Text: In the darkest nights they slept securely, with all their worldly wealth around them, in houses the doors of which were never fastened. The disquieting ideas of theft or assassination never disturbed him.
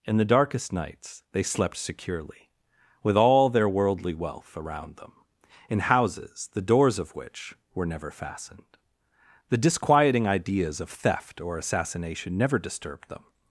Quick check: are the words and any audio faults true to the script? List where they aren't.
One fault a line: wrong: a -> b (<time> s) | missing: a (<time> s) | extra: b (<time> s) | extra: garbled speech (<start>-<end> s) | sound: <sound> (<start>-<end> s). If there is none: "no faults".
wrong: him -> them (13.1 s)